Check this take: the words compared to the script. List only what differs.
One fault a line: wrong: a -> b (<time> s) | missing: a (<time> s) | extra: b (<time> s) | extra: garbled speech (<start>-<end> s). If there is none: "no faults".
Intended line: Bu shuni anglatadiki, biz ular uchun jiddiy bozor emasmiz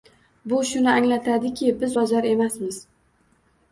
missing: ular uchun jiddiy (1.9 s)